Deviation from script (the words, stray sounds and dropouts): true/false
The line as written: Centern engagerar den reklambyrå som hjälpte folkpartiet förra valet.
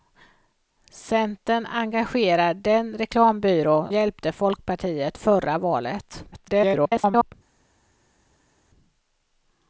true